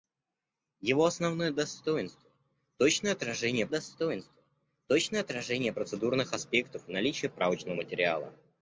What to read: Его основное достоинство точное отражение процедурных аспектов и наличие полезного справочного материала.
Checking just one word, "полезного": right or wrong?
wrong